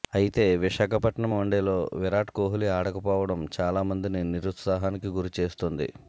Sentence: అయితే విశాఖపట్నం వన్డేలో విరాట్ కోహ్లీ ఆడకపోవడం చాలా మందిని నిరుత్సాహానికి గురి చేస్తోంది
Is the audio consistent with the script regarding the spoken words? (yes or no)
yes